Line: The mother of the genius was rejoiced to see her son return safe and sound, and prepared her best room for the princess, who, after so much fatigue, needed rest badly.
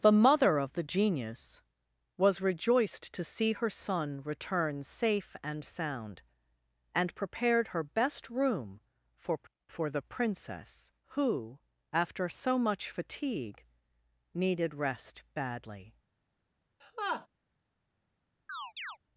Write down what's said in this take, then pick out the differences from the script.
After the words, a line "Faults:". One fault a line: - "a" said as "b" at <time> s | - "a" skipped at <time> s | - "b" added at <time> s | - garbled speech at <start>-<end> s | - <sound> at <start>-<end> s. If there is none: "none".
The mother of the genius was rejoiced to see her son return safe and sound, and prepared her best room for for the princess, who, after so much fatigue, needed rest badly.
Faults:
- "for" added at 9.7 s
- laugh at 16.8-17.3 s
- chirp at 18.5-19.0 s